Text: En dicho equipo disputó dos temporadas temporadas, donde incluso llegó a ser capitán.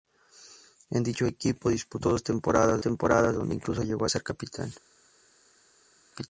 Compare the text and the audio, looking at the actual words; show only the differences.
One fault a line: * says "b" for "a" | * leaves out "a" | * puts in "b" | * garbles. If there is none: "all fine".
all fine